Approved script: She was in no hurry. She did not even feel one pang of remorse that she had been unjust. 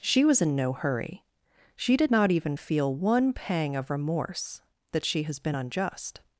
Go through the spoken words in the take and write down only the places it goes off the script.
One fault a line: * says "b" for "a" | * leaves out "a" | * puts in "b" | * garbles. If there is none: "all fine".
* says "has" for "had"